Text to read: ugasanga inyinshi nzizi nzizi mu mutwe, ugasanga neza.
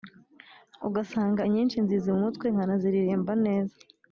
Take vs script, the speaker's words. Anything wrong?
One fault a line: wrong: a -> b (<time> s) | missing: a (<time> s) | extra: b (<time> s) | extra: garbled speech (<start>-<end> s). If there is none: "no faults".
missing: nzizi (2.1 s)
wrong: ugasanga -> nkanaziririmba (2.5 s)